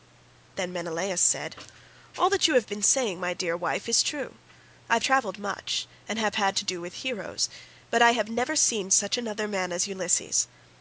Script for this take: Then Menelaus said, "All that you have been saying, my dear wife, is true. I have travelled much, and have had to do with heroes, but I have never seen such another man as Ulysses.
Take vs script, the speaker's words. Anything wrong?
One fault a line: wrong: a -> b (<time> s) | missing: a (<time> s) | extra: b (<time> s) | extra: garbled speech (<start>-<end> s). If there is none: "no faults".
no faults